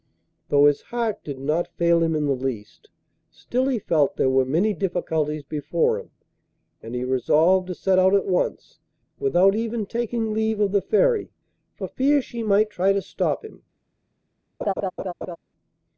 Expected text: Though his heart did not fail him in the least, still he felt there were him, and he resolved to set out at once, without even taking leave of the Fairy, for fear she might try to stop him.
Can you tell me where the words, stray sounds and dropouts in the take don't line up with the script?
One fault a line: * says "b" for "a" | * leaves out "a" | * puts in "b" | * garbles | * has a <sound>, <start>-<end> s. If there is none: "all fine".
* puts in "many difficulties before"
* has a laugh, 14.6-15.4 s